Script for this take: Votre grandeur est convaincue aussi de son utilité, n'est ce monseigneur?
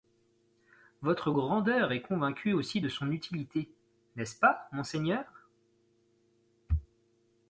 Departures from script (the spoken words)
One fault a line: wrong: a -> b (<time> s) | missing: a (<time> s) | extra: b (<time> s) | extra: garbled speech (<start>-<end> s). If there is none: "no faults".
extra: pas (4.4 s)